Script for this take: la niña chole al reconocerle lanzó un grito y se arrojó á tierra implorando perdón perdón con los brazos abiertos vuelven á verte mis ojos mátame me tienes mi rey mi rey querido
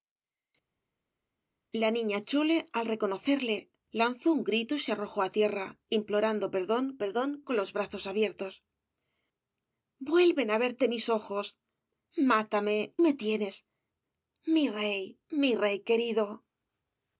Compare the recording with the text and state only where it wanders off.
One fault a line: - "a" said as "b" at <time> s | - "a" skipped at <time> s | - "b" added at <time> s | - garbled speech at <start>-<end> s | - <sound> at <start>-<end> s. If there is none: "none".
none